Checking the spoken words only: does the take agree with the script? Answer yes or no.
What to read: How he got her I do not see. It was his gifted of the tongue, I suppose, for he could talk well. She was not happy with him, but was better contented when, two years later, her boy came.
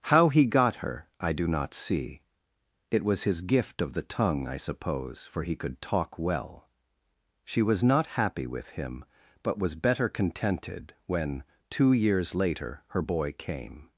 no